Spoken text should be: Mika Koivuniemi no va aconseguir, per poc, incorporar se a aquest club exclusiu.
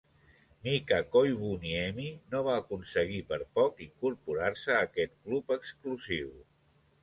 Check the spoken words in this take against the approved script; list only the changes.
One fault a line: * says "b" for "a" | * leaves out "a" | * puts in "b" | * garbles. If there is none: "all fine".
all fine